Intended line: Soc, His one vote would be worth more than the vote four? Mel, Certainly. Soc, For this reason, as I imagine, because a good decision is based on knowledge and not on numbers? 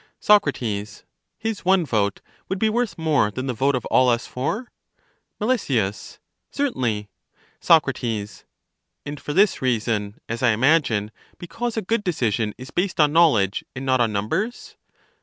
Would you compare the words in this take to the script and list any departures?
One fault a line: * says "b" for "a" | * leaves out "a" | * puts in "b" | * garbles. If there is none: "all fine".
* puts in "of all us"
* puts in "And"